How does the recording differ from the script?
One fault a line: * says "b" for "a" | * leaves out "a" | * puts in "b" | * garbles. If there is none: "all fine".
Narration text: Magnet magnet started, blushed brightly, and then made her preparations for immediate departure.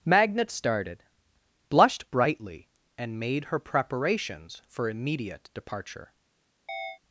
* leaves out "magnet"
* leaves out "then"